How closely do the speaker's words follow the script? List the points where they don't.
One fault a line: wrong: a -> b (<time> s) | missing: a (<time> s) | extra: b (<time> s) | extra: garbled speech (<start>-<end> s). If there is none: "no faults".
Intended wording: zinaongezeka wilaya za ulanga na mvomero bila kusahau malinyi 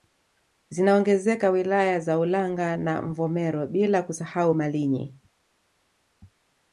no faults